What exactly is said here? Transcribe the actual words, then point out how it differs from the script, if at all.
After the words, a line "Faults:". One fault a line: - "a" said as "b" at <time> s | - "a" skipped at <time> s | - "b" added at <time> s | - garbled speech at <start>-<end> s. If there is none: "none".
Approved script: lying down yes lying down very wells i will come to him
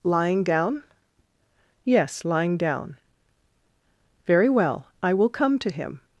lying down yes lying down very well i will come to him
Faults:
- "wells" said as "well" at 4.5 s